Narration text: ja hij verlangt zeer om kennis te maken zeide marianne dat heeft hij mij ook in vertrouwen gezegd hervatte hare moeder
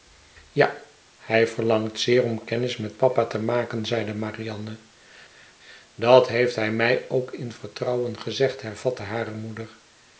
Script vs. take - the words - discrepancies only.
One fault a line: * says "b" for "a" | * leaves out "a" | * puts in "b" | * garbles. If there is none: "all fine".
* puts in "met papa"